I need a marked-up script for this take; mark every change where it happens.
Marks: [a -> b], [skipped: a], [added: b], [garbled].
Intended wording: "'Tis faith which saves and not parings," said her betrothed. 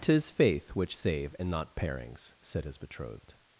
"'Tis faith which [saves -> save] and not parings," said [her -> his] betrothed.